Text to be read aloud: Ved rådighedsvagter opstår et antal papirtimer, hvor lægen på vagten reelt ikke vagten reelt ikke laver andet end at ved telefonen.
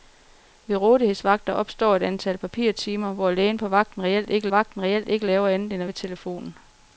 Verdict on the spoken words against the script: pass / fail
pass